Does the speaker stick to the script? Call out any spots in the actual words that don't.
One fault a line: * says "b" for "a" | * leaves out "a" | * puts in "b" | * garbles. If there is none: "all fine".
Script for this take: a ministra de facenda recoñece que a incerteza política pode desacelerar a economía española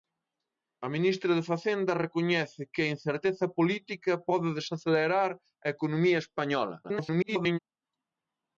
* garbles